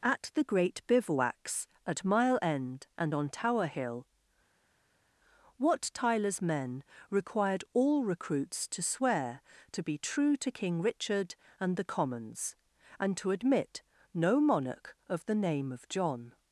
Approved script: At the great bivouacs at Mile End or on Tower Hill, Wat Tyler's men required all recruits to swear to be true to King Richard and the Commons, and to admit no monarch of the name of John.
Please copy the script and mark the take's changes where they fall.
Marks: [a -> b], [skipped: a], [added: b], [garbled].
At the great bivouacs at Mile End [or -> and] on Tower Hill, Wat Tyler's men required all recruits to swear to be true to King Richard and the Commons, and to admit no monarch of the name of John.